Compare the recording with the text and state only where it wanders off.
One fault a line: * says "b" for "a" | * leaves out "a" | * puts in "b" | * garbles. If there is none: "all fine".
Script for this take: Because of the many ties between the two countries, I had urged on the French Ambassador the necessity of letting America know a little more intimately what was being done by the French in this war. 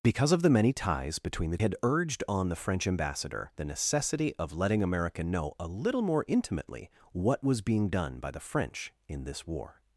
* leaves out "two countries I"